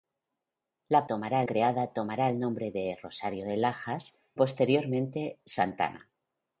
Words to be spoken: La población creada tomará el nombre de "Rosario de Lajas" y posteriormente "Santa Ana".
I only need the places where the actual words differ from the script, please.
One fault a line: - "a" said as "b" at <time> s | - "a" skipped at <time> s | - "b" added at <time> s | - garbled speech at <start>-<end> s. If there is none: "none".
- "población" said as "tomará" at 1.1 s
- "y" skipped at 4.2 s